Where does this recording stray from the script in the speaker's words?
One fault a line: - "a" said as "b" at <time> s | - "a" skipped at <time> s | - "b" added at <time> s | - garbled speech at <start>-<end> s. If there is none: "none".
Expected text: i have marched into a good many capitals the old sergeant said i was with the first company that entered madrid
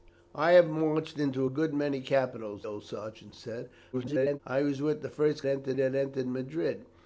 - "the" skipped at 2.6 s
- garbled speech at 3.9-4.4 s
- "company" said as "entered" at 5.4 s